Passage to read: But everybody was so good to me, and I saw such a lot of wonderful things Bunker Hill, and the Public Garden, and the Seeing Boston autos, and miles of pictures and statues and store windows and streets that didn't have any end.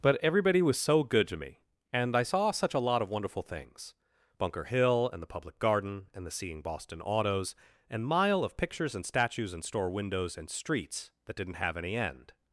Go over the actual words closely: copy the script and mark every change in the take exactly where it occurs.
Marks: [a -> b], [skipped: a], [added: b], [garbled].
But everybody was so good to me, and I saw such a lot of wonderful things Bunker Hill, and the Public Garden, and the Seeing Boston autos, and [miles -> mile] of pictures and statues and store windows and streets that didn't have any end.